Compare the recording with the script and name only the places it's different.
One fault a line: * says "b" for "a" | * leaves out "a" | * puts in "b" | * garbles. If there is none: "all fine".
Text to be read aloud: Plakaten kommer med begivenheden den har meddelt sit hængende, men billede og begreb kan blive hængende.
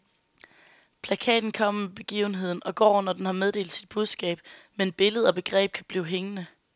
* puts in "og går når"
* says "budskab" for "hængende"